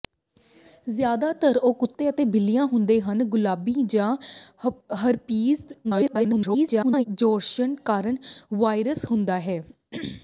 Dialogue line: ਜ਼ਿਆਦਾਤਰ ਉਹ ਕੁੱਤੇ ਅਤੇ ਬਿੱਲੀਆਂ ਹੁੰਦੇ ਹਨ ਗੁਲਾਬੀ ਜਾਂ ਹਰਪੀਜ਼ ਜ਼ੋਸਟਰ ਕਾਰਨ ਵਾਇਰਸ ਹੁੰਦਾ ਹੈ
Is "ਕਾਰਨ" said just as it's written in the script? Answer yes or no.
yes